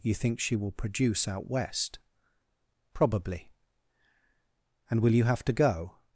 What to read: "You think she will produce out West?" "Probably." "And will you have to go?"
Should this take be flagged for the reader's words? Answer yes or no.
no